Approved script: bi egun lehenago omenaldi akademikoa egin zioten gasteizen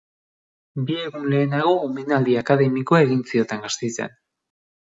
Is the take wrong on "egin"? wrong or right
right